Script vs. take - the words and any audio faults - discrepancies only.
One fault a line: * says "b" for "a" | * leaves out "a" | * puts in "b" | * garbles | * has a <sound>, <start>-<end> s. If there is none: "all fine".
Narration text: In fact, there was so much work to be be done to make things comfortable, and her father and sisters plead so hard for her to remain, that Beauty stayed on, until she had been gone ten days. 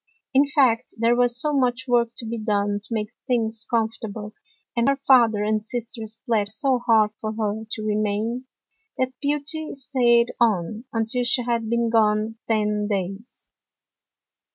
* leaves out "be"